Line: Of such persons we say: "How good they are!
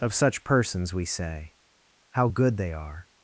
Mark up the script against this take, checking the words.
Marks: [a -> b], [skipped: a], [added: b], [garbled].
Of such persons we say: "How good they are!